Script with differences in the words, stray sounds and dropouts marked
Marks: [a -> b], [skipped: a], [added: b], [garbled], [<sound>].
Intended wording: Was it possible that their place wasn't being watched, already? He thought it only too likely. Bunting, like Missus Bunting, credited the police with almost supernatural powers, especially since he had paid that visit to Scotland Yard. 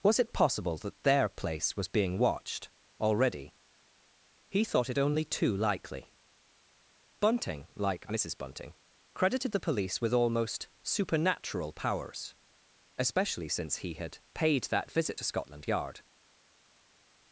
Was it possible that their place [wasn't -> was] being watched, already? He thought it only too likely. Bunting, like Missus Bunting, credited the police with almost supernatural powers, especially since he had paid that visit to Scotland Yard.